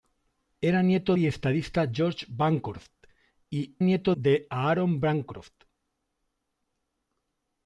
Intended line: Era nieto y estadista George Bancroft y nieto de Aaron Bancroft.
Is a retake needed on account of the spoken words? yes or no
no